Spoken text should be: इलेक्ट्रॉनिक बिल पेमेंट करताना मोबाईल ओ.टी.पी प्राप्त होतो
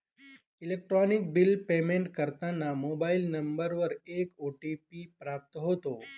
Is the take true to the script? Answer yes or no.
no